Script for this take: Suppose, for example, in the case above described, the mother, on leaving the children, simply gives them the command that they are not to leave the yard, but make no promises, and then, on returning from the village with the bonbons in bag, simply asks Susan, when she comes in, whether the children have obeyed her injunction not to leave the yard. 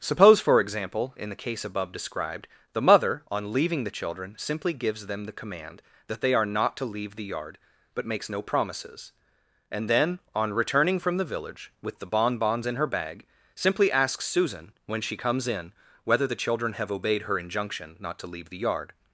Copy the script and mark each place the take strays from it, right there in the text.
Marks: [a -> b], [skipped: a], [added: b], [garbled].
Suppose, for example, in the case above described, the mother, on leaving the children, simply gives them the command that they are not to leave the yard, but [make -> makes] no promises, and then, on returning from the village with the bonbons in [added: her] bag, simply asks Susan, when she comes in, whether the children have obeyed her injunction not to leave the yard.